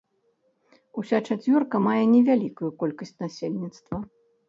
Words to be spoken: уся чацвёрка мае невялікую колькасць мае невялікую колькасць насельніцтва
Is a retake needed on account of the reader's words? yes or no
yes